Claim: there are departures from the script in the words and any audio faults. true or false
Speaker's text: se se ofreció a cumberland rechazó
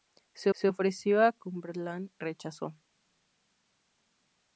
false